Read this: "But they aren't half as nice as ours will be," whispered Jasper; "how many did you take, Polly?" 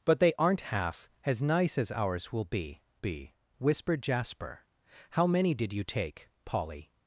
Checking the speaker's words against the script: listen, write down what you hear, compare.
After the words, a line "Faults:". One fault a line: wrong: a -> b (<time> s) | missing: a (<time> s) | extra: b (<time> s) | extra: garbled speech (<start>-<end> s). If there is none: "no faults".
"But they aren't half as nice as ours will be be," whispered Jasper; "how many did you take, Polly?"
Faults:
extra: be (3.0 s)